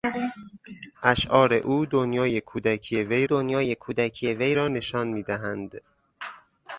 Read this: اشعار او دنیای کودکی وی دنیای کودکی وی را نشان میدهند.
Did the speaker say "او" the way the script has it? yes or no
yes